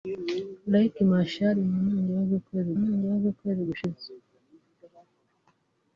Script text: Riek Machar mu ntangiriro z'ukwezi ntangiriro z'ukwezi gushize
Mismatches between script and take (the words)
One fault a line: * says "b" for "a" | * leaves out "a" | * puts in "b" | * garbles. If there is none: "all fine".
all fine